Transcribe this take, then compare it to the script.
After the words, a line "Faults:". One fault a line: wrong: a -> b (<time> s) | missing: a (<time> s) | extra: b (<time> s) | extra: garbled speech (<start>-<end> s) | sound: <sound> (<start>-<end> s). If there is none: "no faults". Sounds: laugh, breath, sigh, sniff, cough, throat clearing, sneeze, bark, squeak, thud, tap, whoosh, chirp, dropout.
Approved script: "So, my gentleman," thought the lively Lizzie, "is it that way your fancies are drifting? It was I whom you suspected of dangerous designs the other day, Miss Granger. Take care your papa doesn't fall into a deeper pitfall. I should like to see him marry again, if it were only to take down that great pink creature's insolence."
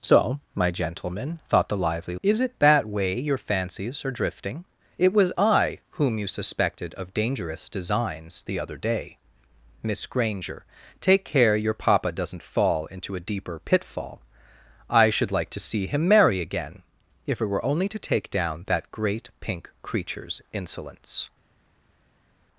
"So, my gentleman," thought the lively "Is it that way your fancies are drifting? It was I whom you suspected of dangerous designs the other day, Miss Granger. Take care your papa doesn't fall into a deeper pitfall. I should like to see him marry again, if it were only to take down that great pink creature's insolence."
Faults:
missing: Lizzie (2.1 s)